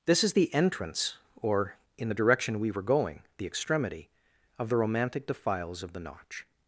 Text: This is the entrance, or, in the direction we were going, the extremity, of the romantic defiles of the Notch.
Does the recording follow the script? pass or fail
pass